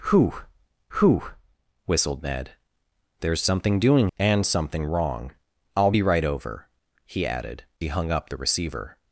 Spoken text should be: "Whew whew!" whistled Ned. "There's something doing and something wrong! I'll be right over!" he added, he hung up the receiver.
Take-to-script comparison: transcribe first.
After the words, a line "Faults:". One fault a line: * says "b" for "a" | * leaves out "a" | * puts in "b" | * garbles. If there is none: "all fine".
"Whew whew!" whistled Ned. "There's something doing and something wrong! I'll be right over!" he added, he hung up the receiver.
Faults:
all fine